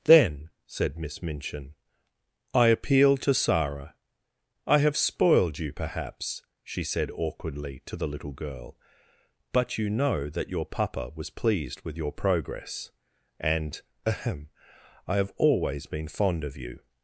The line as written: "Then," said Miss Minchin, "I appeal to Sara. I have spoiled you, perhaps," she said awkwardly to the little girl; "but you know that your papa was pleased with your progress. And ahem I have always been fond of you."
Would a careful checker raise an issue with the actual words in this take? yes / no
no